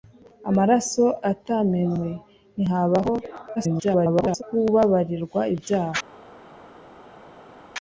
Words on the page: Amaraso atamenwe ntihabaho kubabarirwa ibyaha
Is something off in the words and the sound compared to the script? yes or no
yes